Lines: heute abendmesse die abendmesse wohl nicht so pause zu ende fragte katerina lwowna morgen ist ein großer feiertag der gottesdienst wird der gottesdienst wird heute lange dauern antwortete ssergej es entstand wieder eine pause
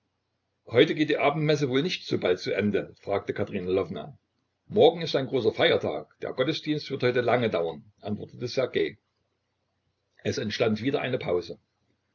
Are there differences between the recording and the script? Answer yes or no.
yes